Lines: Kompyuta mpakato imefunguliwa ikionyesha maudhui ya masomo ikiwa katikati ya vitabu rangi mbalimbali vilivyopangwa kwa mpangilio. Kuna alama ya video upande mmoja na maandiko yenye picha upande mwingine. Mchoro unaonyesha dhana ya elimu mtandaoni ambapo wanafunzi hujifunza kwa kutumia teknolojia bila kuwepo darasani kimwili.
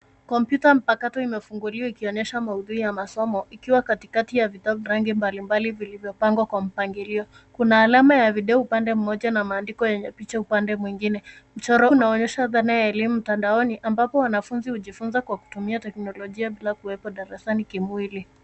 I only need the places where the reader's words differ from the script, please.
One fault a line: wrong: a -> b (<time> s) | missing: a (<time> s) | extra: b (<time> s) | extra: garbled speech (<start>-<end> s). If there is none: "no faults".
no faults